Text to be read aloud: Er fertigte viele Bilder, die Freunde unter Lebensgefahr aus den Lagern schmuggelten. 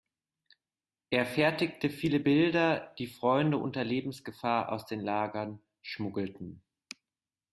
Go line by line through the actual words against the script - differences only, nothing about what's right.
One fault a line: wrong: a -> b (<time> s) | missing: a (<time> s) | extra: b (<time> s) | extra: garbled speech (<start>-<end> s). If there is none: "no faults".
no faults